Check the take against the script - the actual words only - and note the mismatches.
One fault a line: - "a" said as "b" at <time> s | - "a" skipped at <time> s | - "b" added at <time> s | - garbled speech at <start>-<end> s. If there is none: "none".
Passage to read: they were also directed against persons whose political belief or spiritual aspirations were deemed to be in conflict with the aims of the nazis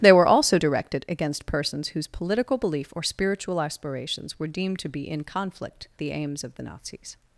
- "with" skipped at 5.9 s